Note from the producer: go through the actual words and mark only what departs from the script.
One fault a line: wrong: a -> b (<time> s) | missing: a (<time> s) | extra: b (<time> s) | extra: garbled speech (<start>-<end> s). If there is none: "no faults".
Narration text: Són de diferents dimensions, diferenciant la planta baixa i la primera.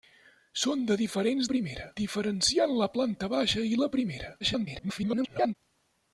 wrong: dimensions -> primera (1.5 s)
extra: garbled speech (4.4-5.6 s)